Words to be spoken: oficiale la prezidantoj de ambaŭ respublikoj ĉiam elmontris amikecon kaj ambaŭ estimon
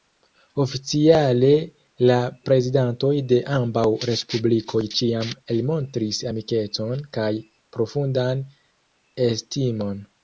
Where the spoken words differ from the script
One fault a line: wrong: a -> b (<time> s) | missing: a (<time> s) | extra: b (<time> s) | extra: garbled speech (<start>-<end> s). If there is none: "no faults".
wrong: ambaŭ -> profundan (7.8 s)